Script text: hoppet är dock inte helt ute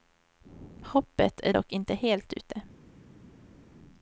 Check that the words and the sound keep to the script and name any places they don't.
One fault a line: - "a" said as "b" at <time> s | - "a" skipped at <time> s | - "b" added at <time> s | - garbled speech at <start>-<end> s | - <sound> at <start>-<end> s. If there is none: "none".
none